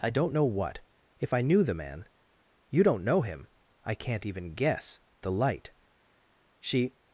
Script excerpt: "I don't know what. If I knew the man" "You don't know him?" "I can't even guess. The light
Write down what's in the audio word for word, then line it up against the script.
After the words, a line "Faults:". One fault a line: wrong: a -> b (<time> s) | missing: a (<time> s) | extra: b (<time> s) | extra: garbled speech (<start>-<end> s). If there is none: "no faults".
"I don't know what. If I knew the man" "You don't know him?" "I can't even guess. The light She
Faults:
extra: She (6.6 s)